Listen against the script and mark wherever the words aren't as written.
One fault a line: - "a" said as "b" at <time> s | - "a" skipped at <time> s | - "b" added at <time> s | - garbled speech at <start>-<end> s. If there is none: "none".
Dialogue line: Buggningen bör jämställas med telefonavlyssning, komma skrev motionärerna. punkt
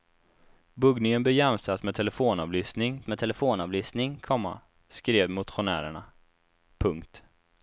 - "med telefonavlyssning" added at 3.1 s